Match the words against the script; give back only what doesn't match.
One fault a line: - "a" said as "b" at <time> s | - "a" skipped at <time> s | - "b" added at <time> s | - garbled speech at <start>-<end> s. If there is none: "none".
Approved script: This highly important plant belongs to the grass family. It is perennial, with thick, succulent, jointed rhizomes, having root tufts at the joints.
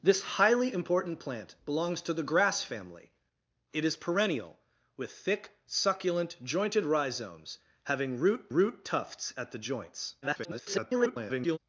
- "root" added at 8.5 s
- garbled speech at 10.2-11.6 s